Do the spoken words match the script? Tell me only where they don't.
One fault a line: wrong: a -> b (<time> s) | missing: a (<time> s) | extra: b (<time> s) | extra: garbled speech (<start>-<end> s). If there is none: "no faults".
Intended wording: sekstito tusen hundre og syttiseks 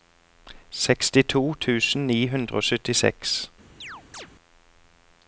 extra: ni (2.1 s)